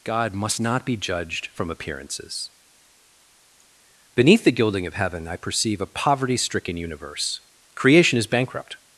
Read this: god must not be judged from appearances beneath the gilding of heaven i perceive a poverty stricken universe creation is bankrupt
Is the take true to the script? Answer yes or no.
yes